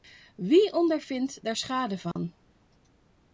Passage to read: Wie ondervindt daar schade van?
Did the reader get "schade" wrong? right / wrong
right